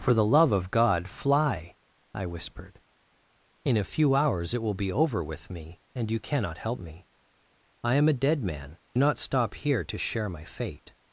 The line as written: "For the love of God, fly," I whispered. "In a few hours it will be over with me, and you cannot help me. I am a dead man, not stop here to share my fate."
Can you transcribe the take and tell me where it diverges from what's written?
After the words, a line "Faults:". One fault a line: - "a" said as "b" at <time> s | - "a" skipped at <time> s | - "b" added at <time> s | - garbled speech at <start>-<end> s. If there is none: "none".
"For the love of God, fly," I whispered. "In a few hours it will be over with me, and you cannot help me. I am a dead man, not stop here to share my fate."
Faults:
none